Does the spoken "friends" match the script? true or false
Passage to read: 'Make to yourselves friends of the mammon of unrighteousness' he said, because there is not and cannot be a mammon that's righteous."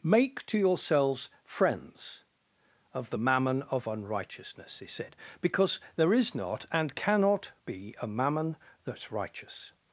true